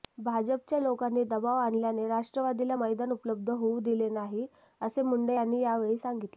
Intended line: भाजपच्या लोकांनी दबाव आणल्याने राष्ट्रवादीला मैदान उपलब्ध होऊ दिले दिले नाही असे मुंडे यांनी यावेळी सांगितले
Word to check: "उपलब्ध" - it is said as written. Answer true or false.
true